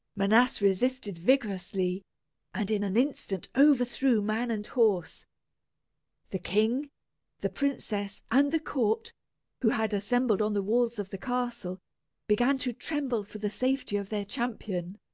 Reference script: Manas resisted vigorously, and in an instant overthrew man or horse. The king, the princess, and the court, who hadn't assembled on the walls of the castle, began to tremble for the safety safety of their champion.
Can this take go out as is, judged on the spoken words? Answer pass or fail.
fail